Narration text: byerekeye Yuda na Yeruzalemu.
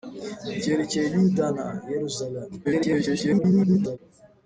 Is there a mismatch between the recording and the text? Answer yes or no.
yes